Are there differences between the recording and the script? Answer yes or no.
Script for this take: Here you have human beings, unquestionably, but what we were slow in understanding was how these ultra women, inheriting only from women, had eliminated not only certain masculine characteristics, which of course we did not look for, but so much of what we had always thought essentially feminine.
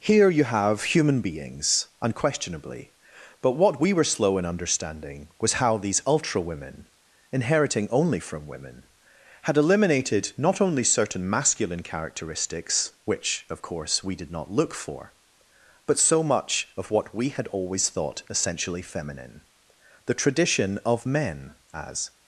yes